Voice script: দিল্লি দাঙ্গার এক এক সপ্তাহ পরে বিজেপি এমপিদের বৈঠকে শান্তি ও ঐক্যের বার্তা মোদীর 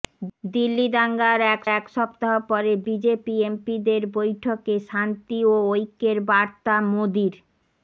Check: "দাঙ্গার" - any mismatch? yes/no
no